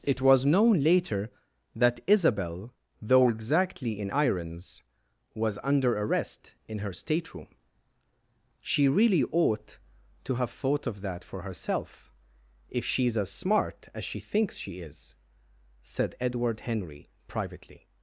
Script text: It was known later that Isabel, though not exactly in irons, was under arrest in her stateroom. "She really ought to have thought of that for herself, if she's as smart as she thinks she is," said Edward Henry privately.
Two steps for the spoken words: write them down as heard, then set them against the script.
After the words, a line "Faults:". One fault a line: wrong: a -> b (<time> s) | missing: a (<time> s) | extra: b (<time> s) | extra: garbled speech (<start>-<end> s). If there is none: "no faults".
It was known later that Isabel, though exactly in irons, was under arrest in her stateroom. "She really ought to have thought of that for herself, if she's as smart as she thinks she is," said Edward Henry privately.
Faults:
missing: not (3.3 s)